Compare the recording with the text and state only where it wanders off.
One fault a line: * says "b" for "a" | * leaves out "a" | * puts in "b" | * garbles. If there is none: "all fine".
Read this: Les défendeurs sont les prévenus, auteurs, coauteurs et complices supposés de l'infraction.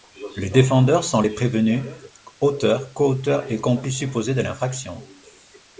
all fine